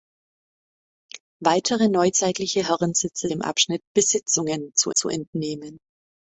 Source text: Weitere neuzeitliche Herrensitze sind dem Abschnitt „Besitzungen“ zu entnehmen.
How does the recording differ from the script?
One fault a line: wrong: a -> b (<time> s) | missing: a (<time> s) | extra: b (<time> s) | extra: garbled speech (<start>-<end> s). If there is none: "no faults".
missing: sind (3.3 s)
extra: zu (4.9 s)